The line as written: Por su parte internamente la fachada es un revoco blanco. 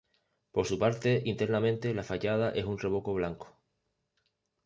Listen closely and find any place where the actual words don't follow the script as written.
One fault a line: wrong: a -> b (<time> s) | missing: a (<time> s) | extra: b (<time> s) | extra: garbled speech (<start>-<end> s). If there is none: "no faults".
no faults